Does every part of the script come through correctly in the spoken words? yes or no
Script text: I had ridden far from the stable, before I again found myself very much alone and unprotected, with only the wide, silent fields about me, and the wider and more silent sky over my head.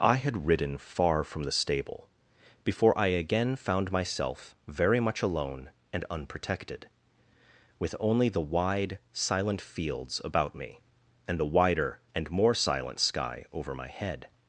yes